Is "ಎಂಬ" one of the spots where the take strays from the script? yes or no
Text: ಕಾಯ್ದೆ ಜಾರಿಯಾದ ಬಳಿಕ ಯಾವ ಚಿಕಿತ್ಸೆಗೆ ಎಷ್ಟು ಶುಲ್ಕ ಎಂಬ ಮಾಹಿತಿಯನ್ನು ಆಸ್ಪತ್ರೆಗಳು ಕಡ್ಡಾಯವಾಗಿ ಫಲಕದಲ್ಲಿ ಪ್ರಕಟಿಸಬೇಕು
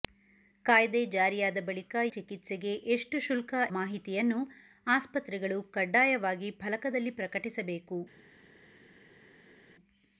yes